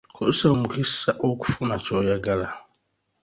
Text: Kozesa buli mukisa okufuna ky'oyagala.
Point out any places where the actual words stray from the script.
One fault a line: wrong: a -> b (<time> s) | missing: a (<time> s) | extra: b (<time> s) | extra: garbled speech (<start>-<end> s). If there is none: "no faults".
missing: buli (0.5 s)